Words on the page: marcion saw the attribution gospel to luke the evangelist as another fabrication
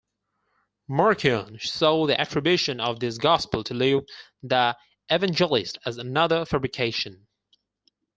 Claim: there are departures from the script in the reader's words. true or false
true